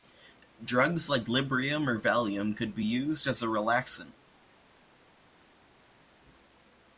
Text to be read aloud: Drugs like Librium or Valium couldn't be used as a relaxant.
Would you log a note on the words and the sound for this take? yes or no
yes